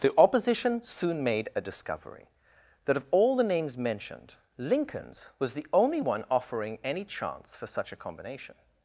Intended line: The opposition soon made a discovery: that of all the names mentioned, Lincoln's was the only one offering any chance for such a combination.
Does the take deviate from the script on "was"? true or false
false